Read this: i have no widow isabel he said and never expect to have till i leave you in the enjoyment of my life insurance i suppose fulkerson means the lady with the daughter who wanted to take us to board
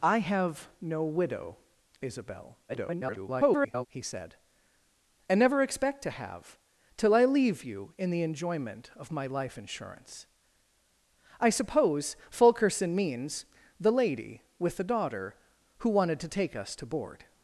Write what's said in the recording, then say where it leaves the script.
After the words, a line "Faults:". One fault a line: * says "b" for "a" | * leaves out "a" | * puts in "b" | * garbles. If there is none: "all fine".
i have no widow isabel [garbled] he said and never expect to have till i leave you in the enjoyment of my life insurance i suppose fulkerson means the lady with the daughter who wanted to take us to board
Faults:
* garbles